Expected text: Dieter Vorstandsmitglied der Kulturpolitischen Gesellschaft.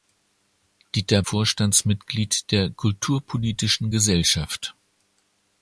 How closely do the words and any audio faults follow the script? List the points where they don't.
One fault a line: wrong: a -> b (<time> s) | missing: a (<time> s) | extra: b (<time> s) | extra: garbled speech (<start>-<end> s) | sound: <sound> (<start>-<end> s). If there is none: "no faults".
no faults